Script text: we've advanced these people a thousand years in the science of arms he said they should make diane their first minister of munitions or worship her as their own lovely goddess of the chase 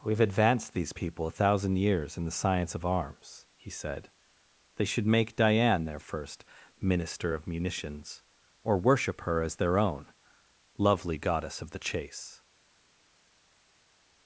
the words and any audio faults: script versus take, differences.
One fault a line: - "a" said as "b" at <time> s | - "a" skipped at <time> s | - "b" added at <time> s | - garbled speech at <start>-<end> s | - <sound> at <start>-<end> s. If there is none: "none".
none